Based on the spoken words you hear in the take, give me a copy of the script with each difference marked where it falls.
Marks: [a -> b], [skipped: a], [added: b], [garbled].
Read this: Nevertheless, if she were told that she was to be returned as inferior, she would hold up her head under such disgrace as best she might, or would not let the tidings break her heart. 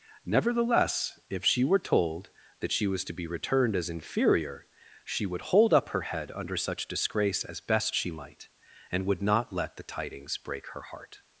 Nevertheless, if she were told that she was to be returned as inferior, she would hold up her head under such disgrace as best she might, [or -> and] would not let the tidings break her heart.